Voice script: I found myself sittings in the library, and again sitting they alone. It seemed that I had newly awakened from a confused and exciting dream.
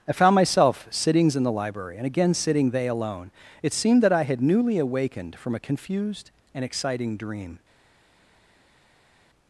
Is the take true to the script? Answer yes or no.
yes